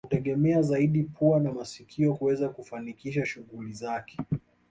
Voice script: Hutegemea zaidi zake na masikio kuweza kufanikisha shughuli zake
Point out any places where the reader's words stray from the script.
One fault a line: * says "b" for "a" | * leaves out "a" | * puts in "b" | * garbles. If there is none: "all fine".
* says "pua" for "zake"